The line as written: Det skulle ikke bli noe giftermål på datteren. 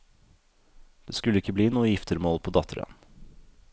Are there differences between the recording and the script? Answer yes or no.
no